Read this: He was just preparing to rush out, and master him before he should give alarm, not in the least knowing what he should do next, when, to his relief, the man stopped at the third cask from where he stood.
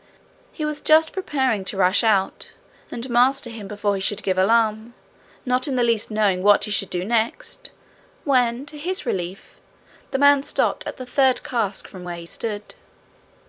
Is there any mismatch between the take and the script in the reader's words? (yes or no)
no